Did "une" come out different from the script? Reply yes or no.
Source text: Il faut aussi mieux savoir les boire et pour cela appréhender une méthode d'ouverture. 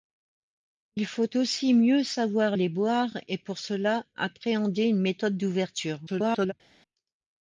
no